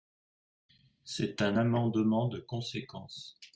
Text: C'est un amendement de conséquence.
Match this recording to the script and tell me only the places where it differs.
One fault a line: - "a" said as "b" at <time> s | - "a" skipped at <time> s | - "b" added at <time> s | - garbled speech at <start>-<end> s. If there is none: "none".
none